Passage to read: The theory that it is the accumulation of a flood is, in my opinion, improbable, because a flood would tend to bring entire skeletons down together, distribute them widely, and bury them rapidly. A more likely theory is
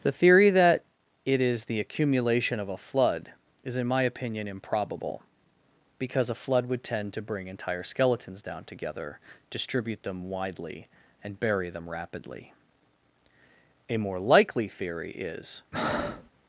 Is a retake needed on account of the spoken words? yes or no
no